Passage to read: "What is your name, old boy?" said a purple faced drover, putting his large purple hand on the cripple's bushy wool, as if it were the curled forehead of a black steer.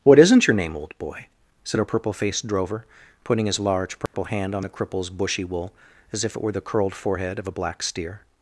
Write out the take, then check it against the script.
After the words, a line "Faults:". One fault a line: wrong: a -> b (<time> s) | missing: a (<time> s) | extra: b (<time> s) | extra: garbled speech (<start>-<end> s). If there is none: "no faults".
"What isn't your name, old boy?" said a purple faced drover, putting his large purple hand on the cripple's bushy wool, as if it were the curled forehead of a black steer.
Faults:
wrong: is -> isn't (0.2 s)